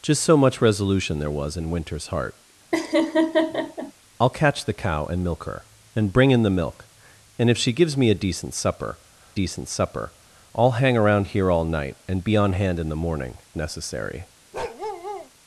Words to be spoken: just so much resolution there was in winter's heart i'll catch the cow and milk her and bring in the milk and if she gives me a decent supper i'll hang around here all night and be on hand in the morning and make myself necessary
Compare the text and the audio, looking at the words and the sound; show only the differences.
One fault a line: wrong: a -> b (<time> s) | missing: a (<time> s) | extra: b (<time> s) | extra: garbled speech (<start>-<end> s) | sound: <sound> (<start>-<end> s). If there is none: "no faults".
sound: laugh (2.7-3.9 s)
extra: decent supper (9.4 s)
missing: and make myself (13.4 s)
sound: bark (14.5-15.3 s)